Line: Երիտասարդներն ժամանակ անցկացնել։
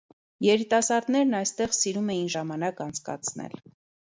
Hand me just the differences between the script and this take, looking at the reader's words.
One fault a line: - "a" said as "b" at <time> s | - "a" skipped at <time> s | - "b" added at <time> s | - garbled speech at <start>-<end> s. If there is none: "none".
- "այստեղ սիրում էին" added at 1.4 s